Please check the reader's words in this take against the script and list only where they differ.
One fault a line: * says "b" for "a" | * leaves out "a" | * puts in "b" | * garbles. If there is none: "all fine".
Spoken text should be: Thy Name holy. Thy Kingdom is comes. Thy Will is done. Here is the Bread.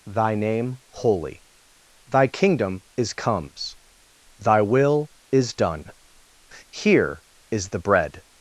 all fine